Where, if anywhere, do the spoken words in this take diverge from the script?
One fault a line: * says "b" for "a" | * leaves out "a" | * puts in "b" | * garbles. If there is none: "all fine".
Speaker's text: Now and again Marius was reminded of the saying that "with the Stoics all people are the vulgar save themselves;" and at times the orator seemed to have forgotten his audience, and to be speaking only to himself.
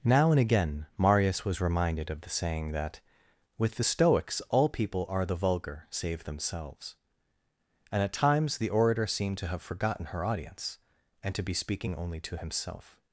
* says "her" for "his"